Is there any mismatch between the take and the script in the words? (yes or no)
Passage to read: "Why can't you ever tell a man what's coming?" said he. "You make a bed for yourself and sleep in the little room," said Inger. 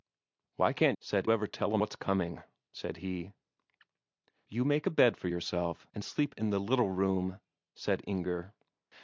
yes